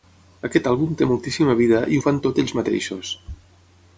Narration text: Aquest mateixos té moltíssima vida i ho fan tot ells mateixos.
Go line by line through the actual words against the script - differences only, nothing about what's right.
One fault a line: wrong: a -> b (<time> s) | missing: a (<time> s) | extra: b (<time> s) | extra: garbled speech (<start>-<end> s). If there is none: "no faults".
wrong: mateixos -> àlbum (0.7 s)